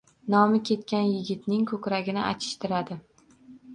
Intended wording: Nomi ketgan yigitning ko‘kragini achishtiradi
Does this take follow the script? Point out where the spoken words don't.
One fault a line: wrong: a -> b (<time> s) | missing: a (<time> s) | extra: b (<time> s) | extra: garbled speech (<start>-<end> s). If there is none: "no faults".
no faults